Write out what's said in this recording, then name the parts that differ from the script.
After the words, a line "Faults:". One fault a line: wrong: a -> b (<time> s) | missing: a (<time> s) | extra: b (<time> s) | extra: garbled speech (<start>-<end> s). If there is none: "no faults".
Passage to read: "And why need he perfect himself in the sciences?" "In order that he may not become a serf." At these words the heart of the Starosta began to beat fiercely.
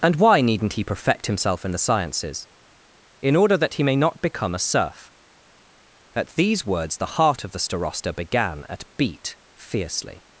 "And why needn't he perfect himself in the sciences?" "In order that he may not become a serf." At these words the heart of the Starosta began at beat fiercely.
Faults:
wrong: need -> needn't (0.4 s)
wrong: to -> at (8.7 s)